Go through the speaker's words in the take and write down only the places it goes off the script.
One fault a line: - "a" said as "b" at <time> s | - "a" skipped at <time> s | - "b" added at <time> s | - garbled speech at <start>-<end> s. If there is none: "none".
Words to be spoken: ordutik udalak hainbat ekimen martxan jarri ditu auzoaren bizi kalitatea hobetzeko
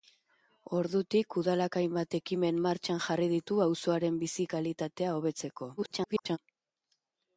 - garbled speech at 5.8-6.4 s